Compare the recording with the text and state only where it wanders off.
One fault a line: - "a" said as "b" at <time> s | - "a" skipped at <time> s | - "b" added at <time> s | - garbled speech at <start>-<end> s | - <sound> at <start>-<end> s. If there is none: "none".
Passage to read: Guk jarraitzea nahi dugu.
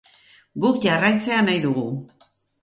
none